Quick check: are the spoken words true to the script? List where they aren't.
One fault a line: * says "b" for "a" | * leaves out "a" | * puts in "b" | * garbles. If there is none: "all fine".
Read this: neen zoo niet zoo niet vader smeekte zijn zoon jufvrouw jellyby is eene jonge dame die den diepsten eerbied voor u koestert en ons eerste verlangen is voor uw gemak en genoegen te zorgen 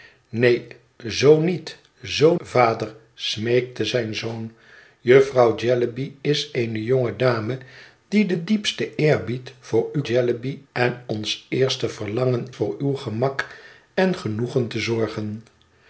* leaves out "niet"
* says "jellyby" for "koestert"
* leaves out "is"